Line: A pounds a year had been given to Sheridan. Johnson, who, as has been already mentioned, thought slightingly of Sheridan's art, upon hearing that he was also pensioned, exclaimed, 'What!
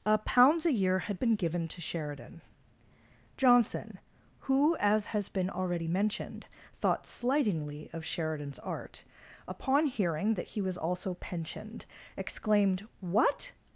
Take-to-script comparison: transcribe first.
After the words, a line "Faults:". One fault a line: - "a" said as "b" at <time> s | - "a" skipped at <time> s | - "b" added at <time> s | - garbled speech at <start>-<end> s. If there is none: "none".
A pounds a year had been given to Sheridan. Johnson, who, as has been already mentioned, thought slightingly of Sheridan's art, upon hearing that he was also pensioned, exclaimed, 'What!
Faults:
none